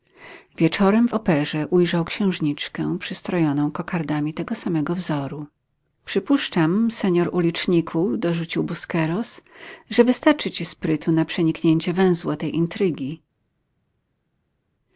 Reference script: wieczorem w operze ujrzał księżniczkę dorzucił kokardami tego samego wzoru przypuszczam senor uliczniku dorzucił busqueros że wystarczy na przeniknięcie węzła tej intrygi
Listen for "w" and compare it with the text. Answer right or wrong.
right